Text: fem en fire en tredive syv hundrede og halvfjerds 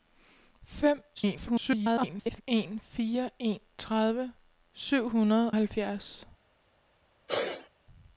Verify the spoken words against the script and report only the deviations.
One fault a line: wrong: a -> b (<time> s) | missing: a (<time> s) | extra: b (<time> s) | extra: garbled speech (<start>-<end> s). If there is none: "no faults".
extra: garbled speech (1.1-2.4 s)
missing: og (5.5 s)